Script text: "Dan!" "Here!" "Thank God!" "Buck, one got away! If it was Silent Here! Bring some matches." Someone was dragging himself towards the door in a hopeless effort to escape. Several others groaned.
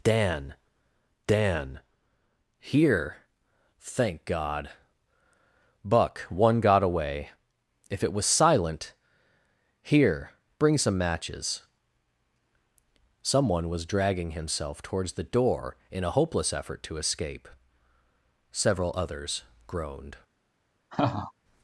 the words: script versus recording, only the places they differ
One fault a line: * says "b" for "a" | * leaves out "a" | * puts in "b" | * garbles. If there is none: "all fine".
* puts in "dan"